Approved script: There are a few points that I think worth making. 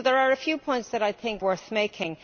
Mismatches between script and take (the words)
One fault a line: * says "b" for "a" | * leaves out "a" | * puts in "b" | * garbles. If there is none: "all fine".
all fine